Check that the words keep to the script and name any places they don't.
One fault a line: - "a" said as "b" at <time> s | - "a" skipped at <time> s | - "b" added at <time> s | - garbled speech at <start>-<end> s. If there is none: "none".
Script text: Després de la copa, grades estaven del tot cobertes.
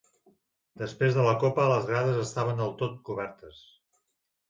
- "les" added at 1.7 s